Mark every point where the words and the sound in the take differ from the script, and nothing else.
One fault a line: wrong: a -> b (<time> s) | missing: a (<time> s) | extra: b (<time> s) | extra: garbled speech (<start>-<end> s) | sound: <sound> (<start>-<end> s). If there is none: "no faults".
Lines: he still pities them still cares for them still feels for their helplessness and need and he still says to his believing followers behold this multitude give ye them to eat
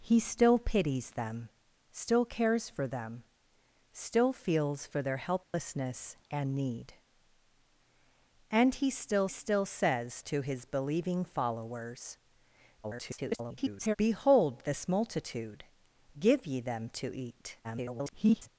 sound: dropout (5.4-5.5 s)
extra: still (9.3 s)
extra: garbled speech (12.8-14.0 s)
extra: garbled speech (17.6-18.5 s)